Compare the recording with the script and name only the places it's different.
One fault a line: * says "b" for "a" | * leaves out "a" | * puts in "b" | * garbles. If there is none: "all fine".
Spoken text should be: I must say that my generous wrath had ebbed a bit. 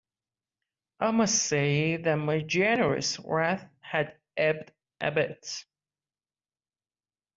all fine